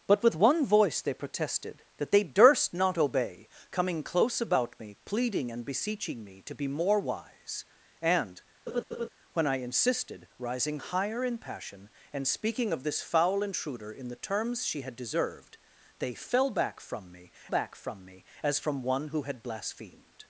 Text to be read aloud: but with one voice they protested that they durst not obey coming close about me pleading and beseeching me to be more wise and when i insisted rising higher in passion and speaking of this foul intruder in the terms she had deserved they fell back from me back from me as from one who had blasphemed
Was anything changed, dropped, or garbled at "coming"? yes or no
no